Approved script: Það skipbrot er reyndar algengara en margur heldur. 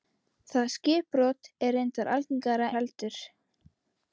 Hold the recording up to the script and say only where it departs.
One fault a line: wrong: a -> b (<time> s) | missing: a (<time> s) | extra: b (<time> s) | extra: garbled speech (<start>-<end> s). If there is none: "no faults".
missing: en margur (2.7 s)